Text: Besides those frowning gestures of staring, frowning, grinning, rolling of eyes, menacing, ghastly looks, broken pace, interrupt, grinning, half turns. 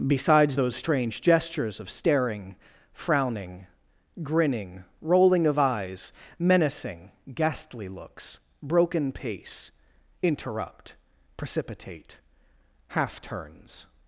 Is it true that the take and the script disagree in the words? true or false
true